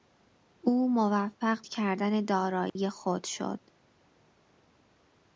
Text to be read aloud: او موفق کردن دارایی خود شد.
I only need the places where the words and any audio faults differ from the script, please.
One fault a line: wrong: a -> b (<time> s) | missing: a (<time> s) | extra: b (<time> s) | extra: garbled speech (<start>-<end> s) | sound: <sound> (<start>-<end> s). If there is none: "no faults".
sound: dropout (2.7-2.8 s)